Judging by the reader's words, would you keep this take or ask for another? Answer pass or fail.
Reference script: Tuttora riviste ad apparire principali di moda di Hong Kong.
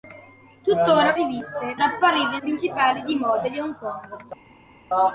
pass